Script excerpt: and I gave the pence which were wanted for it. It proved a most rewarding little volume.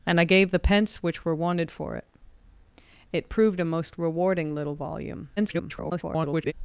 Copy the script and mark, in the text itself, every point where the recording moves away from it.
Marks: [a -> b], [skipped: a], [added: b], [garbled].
and I gave the pence which were wanted for it. It proved a most rewarding little volume. [garbled]